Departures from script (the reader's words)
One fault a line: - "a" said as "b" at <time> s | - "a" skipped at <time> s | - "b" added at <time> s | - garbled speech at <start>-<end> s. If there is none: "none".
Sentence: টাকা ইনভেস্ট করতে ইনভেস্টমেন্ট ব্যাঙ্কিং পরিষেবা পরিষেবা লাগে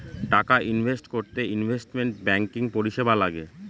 - "পরিষেবা" skipped at 3.1 s